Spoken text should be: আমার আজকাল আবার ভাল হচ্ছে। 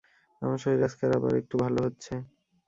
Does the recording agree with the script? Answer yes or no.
no